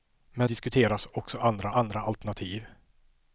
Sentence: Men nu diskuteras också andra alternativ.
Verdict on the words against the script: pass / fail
fail